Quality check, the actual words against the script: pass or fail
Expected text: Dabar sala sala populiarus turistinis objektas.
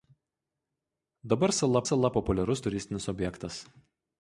pass